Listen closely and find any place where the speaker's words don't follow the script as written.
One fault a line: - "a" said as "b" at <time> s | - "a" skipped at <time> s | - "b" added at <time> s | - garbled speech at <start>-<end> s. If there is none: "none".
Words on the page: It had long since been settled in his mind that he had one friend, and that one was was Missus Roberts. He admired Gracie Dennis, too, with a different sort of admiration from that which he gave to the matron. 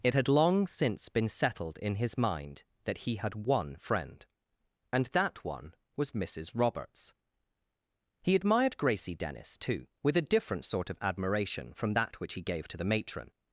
- "was" skipped at 6.2 s